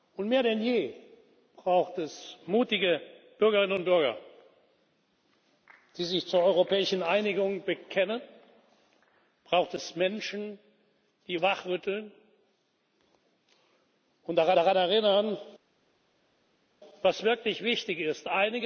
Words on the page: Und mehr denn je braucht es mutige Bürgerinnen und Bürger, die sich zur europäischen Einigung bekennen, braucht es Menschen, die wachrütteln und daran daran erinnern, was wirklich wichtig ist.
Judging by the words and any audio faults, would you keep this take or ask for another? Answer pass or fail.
pass